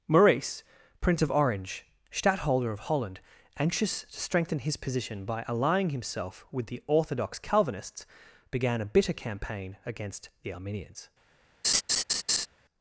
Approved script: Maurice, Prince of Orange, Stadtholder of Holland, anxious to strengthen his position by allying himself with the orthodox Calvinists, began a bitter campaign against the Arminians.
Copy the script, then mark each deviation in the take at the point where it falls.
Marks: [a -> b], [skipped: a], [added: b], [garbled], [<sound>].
Maurice, Prince of Orange, Stadtholder of Holland, anxious to strengthen his position by allying himself with the orthodox Calvinists, began a bitter campaign against the Arminians. [laugh]